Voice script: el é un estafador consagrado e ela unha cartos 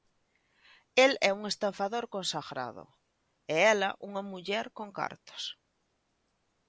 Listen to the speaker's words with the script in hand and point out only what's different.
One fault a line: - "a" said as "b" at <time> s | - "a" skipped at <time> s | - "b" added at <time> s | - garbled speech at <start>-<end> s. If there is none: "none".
- "muller con" added at 4.3 s